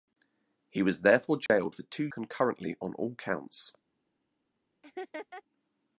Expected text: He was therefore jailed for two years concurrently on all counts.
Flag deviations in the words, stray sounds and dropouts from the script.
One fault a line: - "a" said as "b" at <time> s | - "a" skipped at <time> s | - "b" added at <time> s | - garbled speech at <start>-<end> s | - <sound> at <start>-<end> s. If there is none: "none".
- dropout at 1.5-1.5 s
- "years" skipped at 2.1 s
- laugh at 4.8-5.4 s